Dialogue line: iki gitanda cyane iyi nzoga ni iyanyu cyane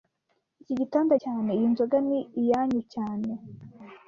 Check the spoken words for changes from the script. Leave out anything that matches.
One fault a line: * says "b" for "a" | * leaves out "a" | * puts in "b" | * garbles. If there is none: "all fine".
all fine